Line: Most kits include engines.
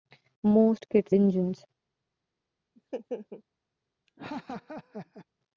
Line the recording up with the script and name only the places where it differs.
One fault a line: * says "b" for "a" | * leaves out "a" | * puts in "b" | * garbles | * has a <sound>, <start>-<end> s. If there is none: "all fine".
* leaves out "include"
* has a laugh, 2.8-3.4 s
* has a laugh, 4.1-5.3 s